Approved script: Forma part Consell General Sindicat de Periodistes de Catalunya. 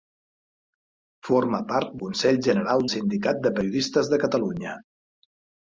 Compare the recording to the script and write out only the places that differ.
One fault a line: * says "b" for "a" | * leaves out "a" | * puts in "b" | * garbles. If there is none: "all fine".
all fine